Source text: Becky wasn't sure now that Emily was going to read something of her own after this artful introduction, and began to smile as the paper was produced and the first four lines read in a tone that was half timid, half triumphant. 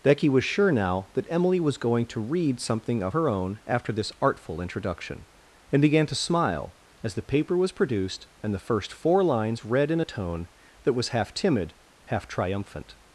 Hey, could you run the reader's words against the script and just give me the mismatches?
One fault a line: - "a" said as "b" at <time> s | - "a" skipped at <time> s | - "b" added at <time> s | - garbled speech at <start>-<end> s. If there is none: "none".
- "wasn't" said as "was" at 0.3 s